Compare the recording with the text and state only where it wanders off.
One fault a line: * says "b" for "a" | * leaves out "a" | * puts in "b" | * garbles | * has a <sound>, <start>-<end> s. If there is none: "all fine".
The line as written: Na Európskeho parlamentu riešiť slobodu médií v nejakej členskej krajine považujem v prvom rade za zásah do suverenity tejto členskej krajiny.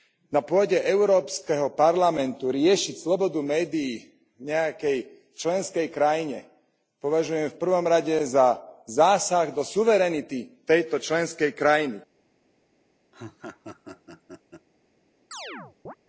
* puts in "pôde"
* has a laugh, 13.1-14.7 s
* has a chirp, 15.3-16.0 s